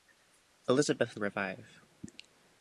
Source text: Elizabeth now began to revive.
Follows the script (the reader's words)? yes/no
no